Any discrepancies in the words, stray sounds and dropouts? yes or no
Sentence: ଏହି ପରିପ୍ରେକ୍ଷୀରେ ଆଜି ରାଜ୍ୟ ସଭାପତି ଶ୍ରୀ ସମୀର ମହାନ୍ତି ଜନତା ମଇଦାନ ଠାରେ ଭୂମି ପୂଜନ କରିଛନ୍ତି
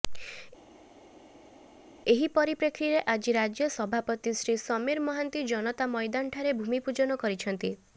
no